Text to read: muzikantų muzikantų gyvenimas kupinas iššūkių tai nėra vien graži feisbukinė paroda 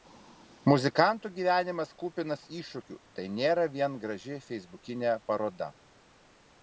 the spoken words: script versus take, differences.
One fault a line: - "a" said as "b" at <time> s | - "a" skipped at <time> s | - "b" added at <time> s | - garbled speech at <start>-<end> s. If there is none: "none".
- "muzikantų" skipped at 1.3 s